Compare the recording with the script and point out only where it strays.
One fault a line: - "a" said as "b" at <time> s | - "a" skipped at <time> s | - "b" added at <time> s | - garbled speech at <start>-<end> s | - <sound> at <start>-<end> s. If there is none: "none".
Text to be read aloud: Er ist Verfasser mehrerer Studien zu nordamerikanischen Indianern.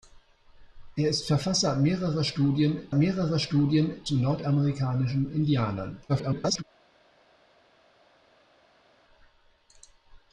- "mehrerer Studien" added at 2.9 s
- garbled speech at 6.1-6.6 s